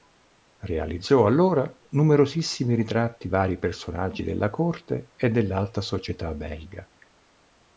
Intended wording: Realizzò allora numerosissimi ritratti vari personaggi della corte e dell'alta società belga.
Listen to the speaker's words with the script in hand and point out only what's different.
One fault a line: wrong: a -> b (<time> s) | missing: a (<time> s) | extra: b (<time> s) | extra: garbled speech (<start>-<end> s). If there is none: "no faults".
no faults